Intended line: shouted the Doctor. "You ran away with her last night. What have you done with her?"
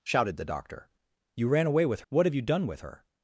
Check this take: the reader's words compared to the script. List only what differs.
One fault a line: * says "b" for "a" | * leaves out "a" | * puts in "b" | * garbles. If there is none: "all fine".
* leaves out "her last night"